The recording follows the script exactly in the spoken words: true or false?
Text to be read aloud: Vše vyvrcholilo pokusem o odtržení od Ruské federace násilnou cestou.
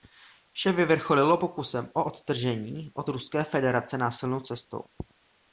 true